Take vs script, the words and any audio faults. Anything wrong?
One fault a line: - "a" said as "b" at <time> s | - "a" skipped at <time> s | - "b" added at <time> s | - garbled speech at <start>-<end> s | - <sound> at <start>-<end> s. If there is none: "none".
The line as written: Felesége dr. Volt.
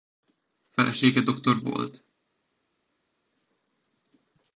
none